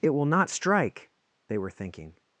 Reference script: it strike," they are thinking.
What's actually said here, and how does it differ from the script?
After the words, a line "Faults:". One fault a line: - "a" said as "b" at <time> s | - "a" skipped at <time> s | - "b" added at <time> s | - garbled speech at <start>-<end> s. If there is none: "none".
it will not strike," they were thinking.
Faults:
- "will not" added at 0.1 s
- "are" said as "were" at 1.6 s